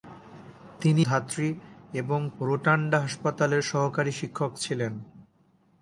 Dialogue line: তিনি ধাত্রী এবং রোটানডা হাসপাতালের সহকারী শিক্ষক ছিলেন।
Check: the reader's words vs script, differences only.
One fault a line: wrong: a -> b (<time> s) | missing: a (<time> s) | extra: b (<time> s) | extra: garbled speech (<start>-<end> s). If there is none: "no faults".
no faults